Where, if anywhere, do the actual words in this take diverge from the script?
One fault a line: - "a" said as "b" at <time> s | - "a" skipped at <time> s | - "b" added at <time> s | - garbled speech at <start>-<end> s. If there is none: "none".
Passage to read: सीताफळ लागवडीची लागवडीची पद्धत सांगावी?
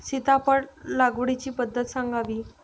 - "लागवडीची" skipped at 1.5 s